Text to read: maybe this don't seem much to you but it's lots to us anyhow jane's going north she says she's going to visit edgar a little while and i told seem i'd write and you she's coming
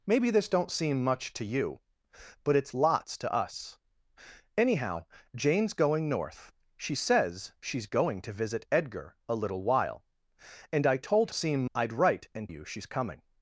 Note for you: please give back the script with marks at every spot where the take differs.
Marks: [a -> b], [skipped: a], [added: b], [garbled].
maybe this don't seem much to you but it's lots to us anyhow jane's going north she says she's going to visit edgar a little while and i told seem i'd write and you she's coming